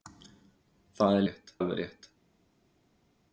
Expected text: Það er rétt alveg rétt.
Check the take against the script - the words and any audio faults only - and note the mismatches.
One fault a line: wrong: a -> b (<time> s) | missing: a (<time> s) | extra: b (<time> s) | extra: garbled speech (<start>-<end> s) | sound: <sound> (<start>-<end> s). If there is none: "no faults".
no faults